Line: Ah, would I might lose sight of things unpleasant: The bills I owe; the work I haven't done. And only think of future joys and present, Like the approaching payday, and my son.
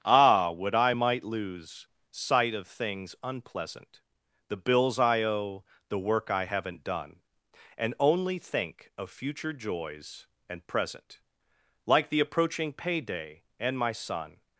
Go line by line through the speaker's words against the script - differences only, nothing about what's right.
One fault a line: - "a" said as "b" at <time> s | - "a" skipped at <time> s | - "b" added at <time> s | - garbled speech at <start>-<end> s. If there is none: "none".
none